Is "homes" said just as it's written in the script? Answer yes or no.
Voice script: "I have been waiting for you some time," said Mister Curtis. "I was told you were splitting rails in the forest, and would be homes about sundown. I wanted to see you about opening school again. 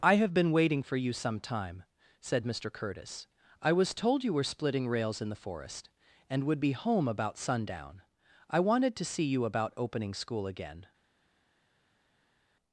no